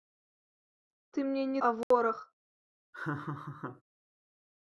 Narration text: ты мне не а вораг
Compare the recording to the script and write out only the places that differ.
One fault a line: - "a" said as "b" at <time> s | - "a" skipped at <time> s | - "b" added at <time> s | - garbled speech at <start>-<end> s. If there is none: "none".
none